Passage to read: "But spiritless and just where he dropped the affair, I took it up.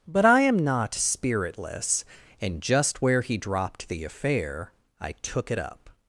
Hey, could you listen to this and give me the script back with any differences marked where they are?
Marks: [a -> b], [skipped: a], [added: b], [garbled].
"But [added: I am not] spiritless and just where he dropped the affair, I took it up.